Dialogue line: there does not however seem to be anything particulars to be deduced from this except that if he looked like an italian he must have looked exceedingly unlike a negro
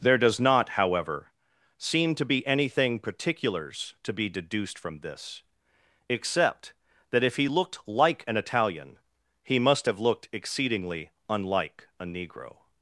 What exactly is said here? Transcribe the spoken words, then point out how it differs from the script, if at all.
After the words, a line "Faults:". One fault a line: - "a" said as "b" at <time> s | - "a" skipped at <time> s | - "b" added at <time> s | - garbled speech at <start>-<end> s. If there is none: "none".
there does not however seem to be anything particulars to be deduced from this except that if he looked like an italian he must have looked exceedingly unlike a negro
Faults:
none